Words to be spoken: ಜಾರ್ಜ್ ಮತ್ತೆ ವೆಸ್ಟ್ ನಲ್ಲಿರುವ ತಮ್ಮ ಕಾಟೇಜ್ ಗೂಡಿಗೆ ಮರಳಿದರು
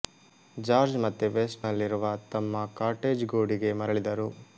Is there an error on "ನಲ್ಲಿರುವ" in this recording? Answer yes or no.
no